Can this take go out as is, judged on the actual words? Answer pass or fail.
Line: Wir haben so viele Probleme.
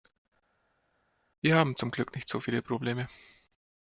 fail